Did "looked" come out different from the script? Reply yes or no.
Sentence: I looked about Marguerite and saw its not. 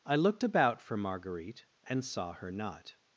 no